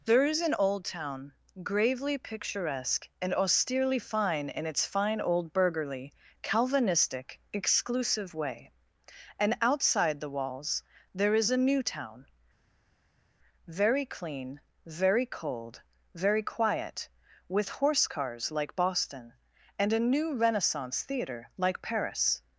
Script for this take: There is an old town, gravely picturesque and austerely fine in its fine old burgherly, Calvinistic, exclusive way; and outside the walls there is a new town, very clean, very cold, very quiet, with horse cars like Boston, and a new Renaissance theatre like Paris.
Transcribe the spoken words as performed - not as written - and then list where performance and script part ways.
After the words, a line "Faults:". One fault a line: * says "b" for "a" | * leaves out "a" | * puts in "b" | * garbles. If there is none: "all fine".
There is an old town, gravely picturesque and austerely fine in its fine old burgherly, Calvinistic, exclusive way; and outside the walls there is a new town, very clean, very cold, very quiet, with horse cars like Boston, and a new Renaissance theatre like Paris.
Faults:
all fine